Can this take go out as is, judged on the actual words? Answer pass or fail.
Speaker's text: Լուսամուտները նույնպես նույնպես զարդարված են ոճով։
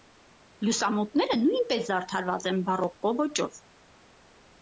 fail